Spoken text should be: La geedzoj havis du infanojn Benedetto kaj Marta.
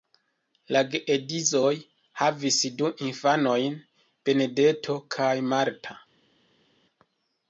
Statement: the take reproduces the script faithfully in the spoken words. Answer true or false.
true